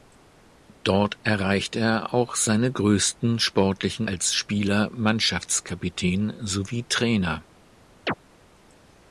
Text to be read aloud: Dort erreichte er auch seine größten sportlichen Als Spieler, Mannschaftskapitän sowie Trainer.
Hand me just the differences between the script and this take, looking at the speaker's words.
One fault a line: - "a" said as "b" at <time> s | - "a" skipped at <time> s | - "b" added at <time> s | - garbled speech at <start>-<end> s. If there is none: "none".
none